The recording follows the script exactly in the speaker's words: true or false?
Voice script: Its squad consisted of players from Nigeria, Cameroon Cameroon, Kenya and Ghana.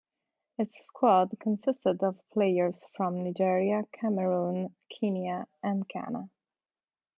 false